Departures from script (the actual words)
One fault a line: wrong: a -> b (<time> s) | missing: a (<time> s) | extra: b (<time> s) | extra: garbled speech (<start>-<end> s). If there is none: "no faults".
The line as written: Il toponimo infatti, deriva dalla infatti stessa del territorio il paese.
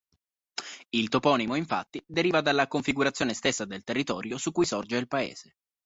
wrong: infatti -> configurazione (2.7 s)
extra: su cui sorge (4.4 s)